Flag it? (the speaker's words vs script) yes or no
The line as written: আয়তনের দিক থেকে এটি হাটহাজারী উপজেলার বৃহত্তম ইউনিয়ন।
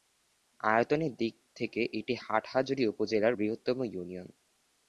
no